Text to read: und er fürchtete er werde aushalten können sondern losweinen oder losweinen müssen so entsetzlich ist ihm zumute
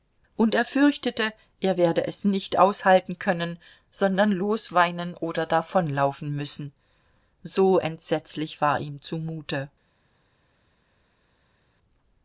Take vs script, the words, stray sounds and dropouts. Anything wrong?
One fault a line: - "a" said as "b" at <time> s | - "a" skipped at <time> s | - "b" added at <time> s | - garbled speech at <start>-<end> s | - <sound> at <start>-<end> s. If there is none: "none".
- "es nicht" added at 2.1 s
- "losweinen" said as "davonlaufen" at 5.4 s
- "ist" said as "war" at 8.6 s